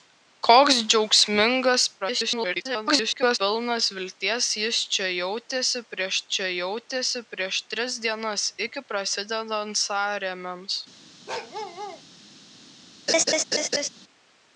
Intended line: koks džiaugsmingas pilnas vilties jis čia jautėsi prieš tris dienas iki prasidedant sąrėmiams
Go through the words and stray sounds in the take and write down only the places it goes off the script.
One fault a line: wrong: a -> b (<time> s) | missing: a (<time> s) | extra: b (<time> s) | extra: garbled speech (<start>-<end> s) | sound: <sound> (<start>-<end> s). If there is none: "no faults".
extra: garbled speech (2.0-3.4 s)
extra: čia jautėsi prieš (6.4 s)
sound: bark (11.3-12.0 s)
sound: laugh (13.1-13.9 s)